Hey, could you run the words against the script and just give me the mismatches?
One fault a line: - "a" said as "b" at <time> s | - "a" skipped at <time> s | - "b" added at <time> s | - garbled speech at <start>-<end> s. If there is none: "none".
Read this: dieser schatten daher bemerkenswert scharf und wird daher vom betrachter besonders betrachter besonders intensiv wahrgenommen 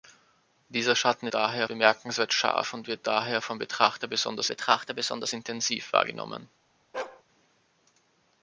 none